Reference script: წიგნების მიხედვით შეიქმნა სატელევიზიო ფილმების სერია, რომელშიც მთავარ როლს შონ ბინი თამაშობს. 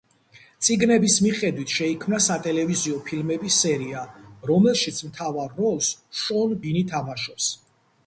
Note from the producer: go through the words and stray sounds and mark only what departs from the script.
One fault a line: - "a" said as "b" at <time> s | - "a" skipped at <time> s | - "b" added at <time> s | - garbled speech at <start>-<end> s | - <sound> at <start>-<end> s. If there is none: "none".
none